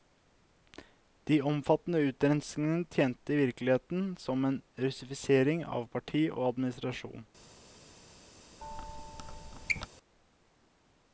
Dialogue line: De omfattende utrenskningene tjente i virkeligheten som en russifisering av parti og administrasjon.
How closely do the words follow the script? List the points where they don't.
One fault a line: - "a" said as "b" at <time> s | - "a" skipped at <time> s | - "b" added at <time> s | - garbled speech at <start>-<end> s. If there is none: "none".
none